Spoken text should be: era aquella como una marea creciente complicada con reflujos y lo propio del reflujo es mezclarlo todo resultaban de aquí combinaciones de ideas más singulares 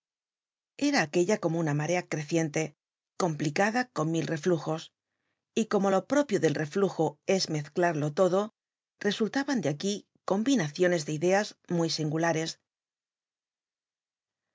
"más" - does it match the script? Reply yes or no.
no